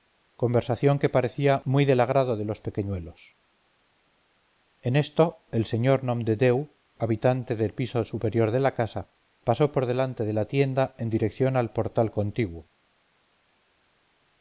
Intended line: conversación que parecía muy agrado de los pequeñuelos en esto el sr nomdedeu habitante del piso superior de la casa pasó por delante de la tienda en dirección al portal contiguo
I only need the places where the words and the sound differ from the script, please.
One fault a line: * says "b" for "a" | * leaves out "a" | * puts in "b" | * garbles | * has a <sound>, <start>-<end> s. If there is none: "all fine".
* puts in "del"